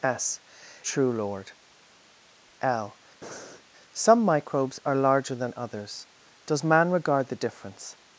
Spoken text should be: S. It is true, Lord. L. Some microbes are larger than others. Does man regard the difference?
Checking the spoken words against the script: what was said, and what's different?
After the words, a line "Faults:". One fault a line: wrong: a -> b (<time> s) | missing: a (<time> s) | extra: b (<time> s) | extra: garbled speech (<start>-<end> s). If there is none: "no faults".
S. True, Lord. L. Some microbes are larger than others. Does man regard the difference?
Faults:
missing: It is (0.4 s)